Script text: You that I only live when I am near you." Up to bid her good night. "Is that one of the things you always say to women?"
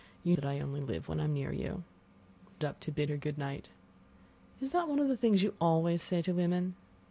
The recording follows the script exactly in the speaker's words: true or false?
true